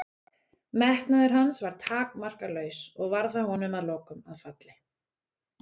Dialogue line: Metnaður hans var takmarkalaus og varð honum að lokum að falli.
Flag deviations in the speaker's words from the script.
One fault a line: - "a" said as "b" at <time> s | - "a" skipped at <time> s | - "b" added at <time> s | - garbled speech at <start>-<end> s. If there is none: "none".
- "það" added at 3.4 s